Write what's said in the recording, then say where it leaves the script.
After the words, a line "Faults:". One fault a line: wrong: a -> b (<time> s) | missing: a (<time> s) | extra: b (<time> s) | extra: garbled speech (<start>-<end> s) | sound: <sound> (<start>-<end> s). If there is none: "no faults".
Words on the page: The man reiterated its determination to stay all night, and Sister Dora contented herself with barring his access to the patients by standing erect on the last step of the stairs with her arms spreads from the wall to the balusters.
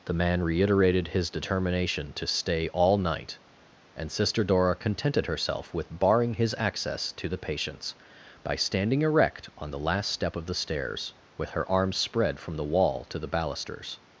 The man reiterated his determination to stay all night, and Sister Dora contented herself with barring his access to the patients by standing erect on the last step of the stairs with her arms spread from the wall to the balusters.
Faults:
wrong: its -> his (1.1 s)
wrong: spreads -> spread (12.0 s)